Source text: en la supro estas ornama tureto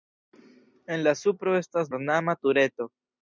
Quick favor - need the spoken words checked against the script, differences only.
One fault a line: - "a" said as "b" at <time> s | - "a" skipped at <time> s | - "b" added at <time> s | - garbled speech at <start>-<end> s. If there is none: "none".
none